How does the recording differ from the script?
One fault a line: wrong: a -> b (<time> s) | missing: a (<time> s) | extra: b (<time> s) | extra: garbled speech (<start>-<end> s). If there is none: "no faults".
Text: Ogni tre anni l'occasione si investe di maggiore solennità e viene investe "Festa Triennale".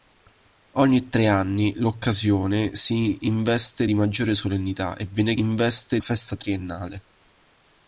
no faults